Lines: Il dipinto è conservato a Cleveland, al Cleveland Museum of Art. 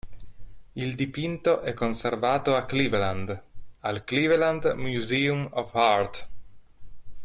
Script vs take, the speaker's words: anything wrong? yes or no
no